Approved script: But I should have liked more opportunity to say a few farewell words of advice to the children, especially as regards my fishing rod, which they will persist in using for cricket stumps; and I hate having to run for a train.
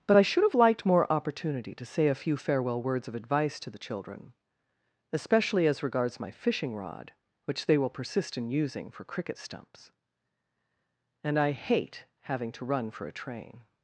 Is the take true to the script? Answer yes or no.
yes